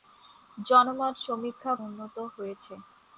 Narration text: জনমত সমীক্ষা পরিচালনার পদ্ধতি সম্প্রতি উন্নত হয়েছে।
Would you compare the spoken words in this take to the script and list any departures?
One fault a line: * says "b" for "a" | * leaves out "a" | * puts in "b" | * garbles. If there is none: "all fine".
* leaves out "পরিচালনার পদ্ধতি সম্প্রতি"